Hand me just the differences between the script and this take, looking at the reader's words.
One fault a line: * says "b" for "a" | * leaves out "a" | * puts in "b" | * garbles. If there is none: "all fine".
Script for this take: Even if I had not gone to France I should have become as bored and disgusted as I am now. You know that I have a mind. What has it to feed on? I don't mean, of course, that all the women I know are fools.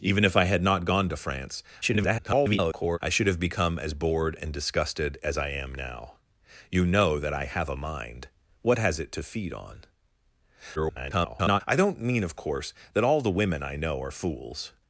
* garbles
* garbles